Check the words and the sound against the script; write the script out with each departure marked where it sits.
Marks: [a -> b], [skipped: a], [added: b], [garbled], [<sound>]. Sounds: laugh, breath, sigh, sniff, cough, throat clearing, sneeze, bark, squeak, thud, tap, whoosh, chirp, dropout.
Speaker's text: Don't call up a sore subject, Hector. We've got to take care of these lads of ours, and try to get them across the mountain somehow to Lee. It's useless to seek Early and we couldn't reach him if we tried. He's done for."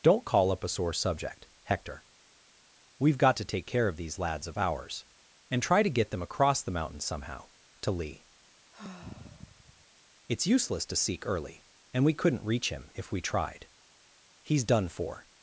Don't call up a sore subject, Hector. We've got to take care of these lads of ours, and try to get them across the mountain somehow to Lee. [sigh] It's useless to seek Early and we couldn't reach him if we tried. He's done for."